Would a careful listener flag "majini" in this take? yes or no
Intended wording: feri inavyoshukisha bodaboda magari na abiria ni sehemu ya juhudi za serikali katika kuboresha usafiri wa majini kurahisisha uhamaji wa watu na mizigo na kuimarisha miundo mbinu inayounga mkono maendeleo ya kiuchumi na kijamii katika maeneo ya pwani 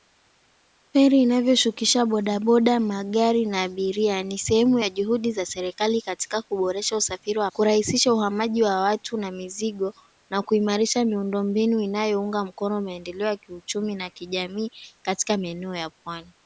yes